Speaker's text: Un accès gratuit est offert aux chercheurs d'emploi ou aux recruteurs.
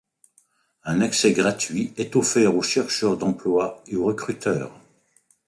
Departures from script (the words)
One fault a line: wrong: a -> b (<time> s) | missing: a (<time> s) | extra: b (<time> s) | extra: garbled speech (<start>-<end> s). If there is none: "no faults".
wrong: ou -> et (3.9 s)